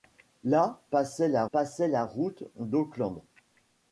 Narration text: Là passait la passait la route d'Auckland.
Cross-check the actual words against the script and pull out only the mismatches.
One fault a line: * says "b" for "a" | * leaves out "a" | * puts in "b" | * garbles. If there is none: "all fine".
all fine